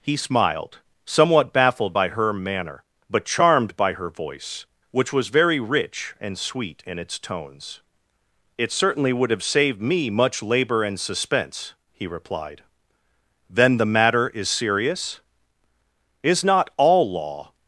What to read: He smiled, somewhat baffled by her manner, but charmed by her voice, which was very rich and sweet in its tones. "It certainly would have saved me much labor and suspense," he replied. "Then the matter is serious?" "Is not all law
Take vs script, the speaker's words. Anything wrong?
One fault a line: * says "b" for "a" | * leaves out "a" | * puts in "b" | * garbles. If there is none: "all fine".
all fine